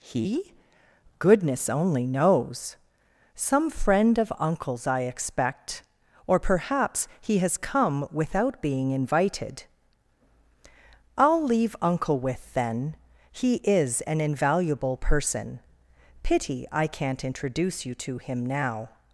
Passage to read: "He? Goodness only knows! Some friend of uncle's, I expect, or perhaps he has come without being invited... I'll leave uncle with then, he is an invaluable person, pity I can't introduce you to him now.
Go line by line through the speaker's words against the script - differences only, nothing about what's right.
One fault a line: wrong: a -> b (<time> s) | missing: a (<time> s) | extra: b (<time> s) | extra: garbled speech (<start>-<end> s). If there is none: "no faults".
no faults